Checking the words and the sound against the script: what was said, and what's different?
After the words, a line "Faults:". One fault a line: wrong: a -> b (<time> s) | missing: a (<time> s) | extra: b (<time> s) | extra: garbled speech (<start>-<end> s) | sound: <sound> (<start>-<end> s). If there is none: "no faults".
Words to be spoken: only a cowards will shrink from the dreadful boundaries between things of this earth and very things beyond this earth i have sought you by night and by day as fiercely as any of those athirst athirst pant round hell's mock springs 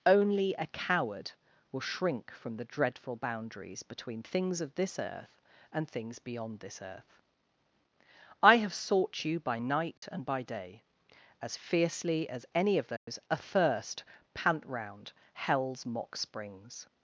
only a coward will shrink from the dreadful boundaries between things of this earth and things beyond this earth i have sought you by night and by day as fiercely as any of those athirst pant round hell's mock springs
Faults:
wrong: cowards -> coward (0.7 s)
missing: very (5.9 s)
sound: dropout (10.0-10.0 s)
sound: dropout (13.0-13.1 s)
missing: athirst (14.0 s)